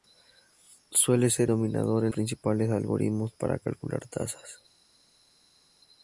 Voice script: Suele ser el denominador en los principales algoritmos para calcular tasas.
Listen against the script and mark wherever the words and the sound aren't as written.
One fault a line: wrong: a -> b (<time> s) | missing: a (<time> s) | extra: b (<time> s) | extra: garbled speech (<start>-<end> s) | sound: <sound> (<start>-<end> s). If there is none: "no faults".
missing: el (1.5 s)
missing: los (2.1 s)